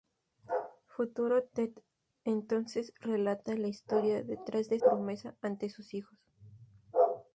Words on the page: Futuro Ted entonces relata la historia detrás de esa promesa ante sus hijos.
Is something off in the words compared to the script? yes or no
yes